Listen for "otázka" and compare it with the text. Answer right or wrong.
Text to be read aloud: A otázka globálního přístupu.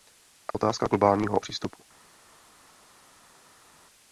right